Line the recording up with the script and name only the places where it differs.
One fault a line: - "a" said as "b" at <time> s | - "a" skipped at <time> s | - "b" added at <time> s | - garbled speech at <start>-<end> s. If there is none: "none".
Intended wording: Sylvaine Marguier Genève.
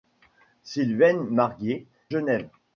none